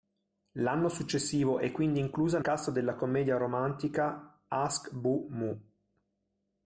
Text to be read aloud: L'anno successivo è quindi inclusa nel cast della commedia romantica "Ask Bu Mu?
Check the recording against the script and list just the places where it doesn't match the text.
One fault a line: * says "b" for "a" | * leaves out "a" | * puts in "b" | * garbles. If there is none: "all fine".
* leaves out "nel"